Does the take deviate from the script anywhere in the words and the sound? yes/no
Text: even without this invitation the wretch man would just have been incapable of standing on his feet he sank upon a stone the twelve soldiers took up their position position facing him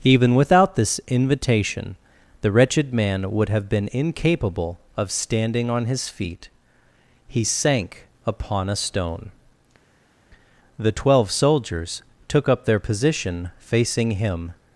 yes